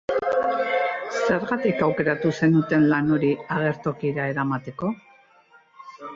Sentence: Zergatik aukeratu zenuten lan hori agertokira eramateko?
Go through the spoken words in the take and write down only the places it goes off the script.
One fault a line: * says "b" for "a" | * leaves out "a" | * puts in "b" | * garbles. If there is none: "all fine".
all fine